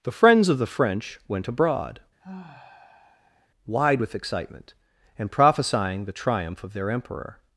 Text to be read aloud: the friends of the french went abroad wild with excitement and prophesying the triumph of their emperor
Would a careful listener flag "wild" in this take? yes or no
yes